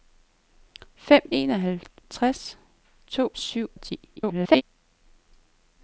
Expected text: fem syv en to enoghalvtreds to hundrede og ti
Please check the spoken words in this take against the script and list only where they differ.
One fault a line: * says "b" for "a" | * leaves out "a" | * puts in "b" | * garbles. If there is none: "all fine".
* leaves out "syv en to"
* says "syv" for "hundrede"
* garbles